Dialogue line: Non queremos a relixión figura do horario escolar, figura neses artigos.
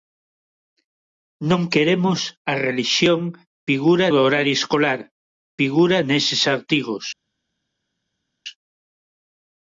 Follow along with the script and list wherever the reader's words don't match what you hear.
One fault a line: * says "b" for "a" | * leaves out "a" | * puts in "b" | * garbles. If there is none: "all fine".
all fine